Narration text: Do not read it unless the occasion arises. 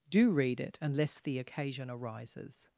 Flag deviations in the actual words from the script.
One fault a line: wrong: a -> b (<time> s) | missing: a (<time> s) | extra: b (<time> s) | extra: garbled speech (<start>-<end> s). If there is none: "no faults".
missing: not (0.3 s)